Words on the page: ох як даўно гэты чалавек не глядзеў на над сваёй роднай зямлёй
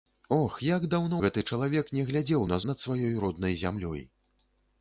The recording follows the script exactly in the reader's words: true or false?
true